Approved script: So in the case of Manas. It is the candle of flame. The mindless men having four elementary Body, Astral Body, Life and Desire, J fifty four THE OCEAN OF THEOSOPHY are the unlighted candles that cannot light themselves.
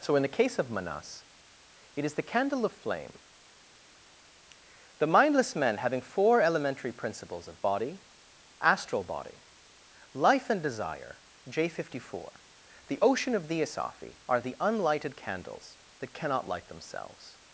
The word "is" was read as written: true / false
true